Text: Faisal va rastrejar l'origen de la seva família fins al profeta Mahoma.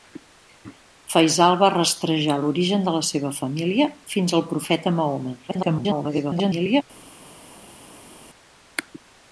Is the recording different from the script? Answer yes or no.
yes